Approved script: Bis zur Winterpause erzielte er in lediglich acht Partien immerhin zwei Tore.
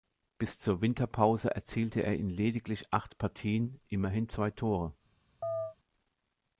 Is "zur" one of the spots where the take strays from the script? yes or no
no